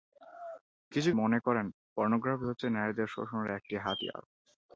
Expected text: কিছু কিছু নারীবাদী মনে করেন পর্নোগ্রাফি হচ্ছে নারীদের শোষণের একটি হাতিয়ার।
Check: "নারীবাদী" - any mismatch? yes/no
yes